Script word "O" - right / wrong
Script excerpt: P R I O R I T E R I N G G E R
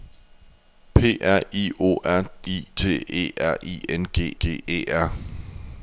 right